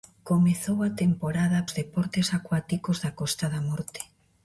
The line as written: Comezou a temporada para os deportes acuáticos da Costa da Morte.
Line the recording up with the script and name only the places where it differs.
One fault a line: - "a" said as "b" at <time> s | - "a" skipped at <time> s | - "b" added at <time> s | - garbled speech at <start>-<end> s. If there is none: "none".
- "para" skipped at 1.6 s